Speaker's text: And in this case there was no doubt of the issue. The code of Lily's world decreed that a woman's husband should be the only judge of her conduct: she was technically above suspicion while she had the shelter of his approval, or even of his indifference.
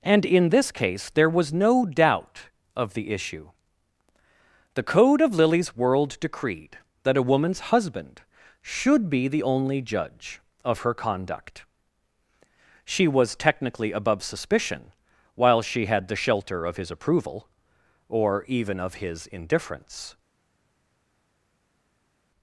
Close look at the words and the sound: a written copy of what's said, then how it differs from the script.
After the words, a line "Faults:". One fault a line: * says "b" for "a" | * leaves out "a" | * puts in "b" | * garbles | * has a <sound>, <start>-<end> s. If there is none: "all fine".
And in this case there was no doubt of the issue. The code of Lily's world decreed that a woman's husband should be the only judge of her conduct: she was technically above suspicion while she had the shelter of his approval, or even of his indifference.
Faults:
all fine